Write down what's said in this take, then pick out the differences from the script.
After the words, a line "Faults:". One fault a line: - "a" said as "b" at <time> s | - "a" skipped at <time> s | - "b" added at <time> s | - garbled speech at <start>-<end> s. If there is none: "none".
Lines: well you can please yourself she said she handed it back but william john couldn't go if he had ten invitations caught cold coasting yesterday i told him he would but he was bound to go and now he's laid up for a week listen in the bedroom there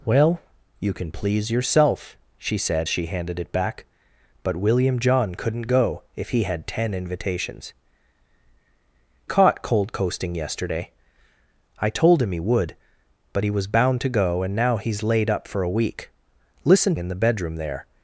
well you can please yourself she said she handed it back but william john couldn't go if he had ten invitations caught cold coasting yesterday i told him he would but he was bound to go and now he's laid up for a week listen in the bedroom there
Faults:
none